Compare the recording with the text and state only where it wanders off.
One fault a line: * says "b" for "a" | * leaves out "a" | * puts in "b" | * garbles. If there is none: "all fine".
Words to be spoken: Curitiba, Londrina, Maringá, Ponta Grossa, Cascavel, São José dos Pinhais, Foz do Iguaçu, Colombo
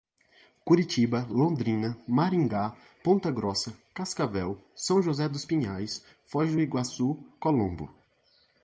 all fine